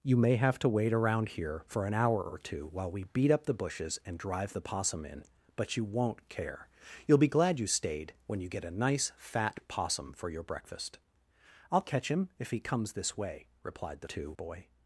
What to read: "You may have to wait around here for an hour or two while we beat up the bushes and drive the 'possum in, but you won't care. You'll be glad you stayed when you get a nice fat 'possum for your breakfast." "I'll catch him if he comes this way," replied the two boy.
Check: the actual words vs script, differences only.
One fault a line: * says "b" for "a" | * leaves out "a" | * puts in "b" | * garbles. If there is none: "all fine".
all fine